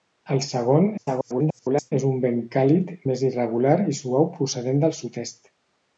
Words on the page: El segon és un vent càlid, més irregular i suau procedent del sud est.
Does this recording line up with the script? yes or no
no